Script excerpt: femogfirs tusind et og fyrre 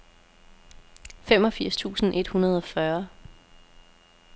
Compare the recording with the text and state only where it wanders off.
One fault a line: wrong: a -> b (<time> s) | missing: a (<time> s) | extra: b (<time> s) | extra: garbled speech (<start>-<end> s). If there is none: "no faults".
extra: hundrede (2.3 s)